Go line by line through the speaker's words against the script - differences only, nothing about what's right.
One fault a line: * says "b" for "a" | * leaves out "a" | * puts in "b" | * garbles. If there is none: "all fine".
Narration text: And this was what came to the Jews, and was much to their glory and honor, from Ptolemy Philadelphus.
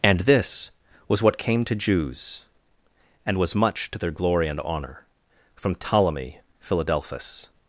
* leaves out "the"